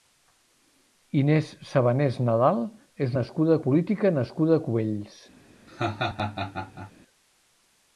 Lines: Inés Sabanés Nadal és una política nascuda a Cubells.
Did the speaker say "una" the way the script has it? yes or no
no